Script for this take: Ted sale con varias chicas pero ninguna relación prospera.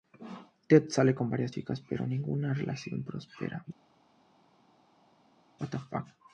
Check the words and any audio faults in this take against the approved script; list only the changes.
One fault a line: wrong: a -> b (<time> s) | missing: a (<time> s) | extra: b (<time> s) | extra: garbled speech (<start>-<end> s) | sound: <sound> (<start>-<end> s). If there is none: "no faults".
no faults